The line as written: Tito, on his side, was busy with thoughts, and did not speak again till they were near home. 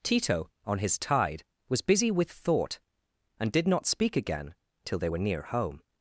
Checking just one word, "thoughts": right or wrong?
wrong